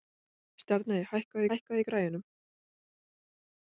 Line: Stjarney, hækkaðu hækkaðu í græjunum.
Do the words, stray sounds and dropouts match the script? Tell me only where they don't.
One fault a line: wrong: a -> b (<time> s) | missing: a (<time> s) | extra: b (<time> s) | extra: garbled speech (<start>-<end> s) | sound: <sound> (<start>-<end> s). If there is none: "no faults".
no faults